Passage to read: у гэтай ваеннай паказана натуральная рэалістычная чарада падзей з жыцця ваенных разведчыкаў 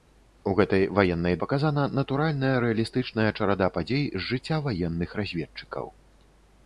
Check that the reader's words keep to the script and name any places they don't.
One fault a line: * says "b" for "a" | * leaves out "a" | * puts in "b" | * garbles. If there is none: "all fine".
all fine